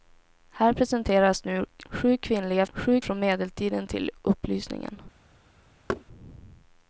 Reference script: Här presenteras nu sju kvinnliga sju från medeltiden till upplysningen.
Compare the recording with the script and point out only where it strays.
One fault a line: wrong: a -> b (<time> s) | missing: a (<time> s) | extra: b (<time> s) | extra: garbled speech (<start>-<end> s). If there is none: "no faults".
no faults